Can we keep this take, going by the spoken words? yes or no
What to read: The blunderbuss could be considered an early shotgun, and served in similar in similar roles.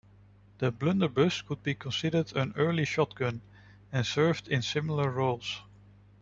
no